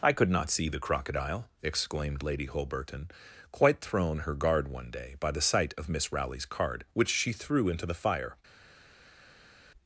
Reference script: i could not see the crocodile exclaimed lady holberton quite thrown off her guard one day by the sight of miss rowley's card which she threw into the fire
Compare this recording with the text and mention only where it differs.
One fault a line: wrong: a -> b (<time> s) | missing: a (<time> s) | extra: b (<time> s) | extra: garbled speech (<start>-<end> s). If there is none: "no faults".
missing: off (4.2 s)